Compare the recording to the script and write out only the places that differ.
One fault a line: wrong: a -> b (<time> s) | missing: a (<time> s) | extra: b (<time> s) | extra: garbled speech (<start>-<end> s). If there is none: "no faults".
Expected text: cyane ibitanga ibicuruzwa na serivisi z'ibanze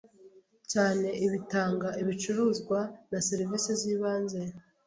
no faults